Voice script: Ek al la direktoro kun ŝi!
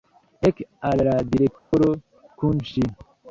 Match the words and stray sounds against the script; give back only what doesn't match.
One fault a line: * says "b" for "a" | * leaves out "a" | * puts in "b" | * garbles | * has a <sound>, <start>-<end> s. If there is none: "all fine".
* has a dropout, 1.6-1.7 s